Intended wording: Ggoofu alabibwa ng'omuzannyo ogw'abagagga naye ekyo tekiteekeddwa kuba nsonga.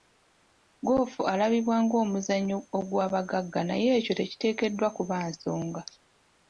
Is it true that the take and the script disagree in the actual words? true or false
false